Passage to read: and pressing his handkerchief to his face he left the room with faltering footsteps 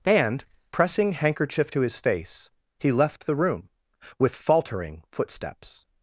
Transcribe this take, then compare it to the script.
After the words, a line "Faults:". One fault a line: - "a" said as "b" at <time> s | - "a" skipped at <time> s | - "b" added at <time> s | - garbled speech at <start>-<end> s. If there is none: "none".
and pressing handkerchief to his face he left the room with faltering footsteps
Faults:
- "his" skipped at 1.1 s